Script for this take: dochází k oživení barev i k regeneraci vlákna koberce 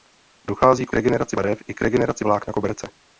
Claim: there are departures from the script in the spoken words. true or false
true